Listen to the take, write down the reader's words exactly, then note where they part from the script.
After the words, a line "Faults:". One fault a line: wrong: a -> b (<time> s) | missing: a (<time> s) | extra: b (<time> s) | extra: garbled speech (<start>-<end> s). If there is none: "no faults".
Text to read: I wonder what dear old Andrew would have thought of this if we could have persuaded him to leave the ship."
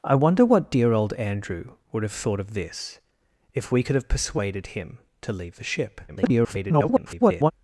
I wonder what dear old Andrew would have thought of this if we could have persuaded him to leave the ship." [garbled]
Faults:
extra: garbled speech (6.1-7.5 s)